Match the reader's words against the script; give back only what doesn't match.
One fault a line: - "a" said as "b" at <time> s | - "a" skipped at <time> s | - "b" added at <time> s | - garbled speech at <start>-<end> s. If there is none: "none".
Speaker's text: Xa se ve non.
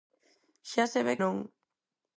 none